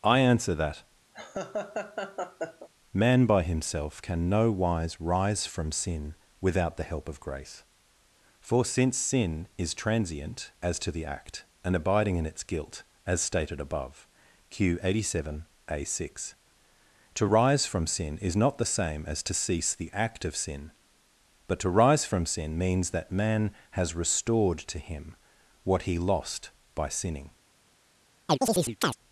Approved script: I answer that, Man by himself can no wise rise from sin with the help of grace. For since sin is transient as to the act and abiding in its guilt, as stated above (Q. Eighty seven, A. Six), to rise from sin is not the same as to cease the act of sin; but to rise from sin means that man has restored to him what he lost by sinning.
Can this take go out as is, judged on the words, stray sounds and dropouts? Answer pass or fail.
fail